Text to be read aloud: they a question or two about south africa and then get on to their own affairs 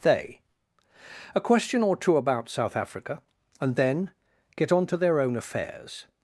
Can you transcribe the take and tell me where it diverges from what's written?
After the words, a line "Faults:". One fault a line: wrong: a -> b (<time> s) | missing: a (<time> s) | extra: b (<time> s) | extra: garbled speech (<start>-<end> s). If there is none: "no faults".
they a question or two about south africa and then get on to their own affairs
Faults:
no faults